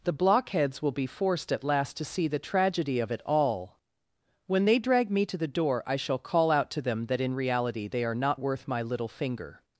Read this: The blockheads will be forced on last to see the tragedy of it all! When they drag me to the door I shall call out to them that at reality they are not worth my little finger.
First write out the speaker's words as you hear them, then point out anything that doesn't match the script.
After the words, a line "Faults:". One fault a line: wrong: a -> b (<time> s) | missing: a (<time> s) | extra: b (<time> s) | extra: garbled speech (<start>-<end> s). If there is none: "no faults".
The blockheads will be forced at last to see the tragedy of it all! When they drag me to the door I shall call out to them that in reality they are not worth my little finger.
Faults:
wrong: on -> at (1.5 s)
wrong: at -> in (7.2 s)